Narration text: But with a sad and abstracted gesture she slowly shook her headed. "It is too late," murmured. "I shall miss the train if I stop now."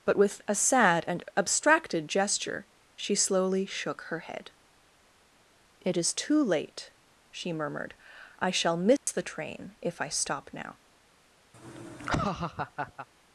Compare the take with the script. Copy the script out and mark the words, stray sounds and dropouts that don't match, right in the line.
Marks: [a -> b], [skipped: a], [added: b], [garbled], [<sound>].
But with a sad and abstracted gesture she slowly shook her [headed. -> head] "It is too late," [added: she] murmured. "I shall miss [dropout] the train if I stop now." [laugh]